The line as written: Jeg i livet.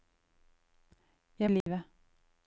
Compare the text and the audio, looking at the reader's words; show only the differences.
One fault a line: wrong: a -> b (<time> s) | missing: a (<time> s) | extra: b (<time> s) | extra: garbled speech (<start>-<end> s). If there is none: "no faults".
no faults